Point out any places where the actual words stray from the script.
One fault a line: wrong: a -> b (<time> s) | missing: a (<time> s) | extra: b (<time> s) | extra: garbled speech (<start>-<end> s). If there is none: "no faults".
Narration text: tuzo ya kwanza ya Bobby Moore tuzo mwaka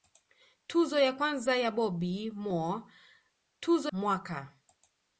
no faults